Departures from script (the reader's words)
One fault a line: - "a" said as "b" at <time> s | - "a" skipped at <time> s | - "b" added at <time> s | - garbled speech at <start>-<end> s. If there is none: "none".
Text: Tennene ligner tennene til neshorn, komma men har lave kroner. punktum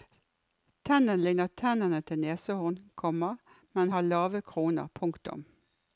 none